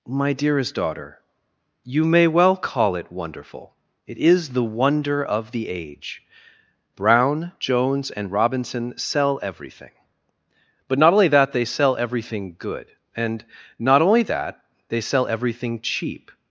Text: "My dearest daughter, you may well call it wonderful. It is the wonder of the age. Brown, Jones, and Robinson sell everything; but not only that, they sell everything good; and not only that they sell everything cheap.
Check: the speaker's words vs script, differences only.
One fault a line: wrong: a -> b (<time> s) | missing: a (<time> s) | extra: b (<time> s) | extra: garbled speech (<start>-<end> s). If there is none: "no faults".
no faults